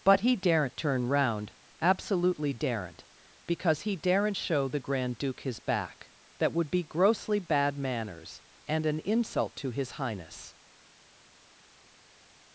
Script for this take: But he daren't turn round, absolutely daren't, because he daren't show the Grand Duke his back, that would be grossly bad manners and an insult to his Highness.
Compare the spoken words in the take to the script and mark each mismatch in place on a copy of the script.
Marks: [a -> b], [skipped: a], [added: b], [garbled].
But he daren't turn round, absolutely daren't, because he daren't show the Grand Duke his back, that would be grossly bad manners and an insult to his Highness.